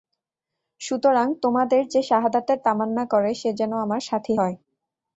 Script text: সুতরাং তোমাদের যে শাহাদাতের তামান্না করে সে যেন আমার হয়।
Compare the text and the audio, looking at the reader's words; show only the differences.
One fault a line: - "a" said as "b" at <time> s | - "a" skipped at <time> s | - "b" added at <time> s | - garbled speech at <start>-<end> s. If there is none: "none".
- "সাথী" added at 4.0 s